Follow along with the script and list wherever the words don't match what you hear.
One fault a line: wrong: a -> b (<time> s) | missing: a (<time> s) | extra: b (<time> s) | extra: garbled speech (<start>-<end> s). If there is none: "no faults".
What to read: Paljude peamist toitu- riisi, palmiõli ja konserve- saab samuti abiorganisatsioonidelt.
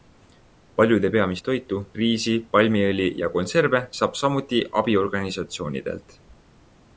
no faults